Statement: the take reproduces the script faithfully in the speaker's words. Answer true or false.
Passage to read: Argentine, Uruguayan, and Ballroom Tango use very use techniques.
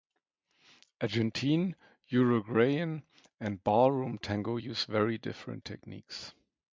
false